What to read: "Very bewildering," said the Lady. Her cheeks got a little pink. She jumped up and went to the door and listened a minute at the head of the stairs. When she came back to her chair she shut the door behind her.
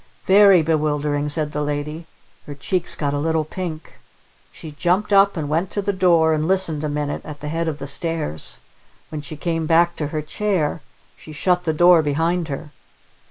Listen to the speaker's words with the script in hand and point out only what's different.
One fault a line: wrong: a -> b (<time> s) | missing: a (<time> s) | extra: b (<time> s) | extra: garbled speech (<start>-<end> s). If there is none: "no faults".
no faults